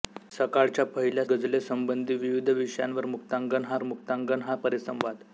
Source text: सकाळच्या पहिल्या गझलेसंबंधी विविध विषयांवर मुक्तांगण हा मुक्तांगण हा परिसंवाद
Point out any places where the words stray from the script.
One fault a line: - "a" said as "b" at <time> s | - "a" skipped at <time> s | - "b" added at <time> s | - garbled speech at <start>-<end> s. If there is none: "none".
none